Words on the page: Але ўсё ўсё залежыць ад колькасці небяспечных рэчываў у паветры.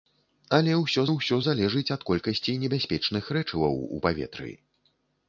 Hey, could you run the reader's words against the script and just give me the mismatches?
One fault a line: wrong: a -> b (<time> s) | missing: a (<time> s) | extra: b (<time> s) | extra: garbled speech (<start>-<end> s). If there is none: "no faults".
no faults